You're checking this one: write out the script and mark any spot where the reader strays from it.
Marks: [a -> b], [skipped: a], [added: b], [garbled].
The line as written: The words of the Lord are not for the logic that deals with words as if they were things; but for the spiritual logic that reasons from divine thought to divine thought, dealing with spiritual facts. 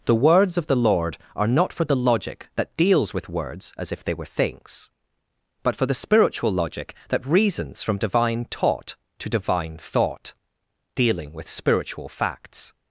The words of the Lord are not for the logic that deals with words as if they were things; but for the spiritual logic that reasons from divine [thought -> taught] to divine thought, dealing with spiritual facts.